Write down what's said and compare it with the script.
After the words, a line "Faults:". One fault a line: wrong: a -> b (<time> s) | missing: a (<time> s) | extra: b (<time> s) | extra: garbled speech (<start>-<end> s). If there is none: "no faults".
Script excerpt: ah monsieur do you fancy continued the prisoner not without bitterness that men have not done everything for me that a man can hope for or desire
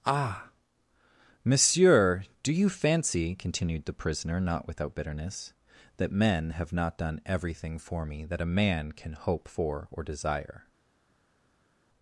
ah monsieur do you fancy continued the prisoner not without bitterness that men have not done everything for me that a man can hope for or desire
Faults:
no faults